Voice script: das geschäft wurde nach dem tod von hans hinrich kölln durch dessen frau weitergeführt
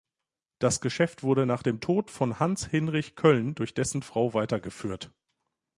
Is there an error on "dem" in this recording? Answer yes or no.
no